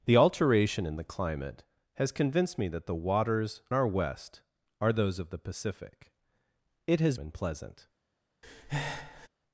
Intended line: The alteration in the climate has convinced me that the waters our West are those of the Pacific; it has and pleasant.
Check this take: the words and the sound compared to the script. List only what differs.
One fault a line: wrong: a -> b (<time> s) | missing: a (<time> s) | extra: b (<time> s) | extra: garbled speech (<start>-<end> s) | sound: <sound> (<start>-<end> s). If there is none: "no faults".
sound: breath (8.4-9.3 s)